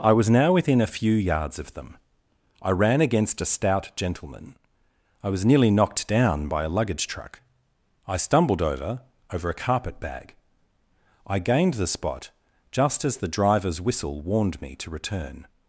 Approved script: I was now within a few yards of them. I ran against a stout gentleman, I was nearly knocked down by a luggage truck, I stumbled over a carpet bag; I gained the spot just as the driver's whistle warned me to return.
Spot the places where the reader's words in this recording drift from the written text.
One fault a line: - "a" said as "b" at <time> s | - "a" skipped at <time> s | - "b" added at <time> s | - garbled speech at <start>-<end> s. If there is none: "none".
- "over" added at 9.3 s